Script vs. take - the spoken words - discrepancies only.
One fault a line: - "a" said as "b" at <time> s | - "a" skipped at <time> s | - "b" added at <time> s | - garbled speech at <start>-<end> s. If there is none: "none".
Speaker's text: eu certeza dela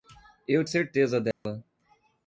none